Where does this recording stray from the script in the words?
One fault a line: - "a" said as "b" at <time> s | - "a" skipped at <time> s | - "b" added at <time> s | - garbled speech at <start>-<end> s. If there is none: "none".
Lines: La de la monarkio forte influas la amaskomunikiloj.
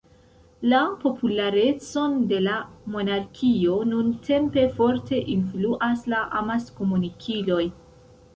- "popularecon" added at 1.0 s
- "nuntempe" added at 3.9 s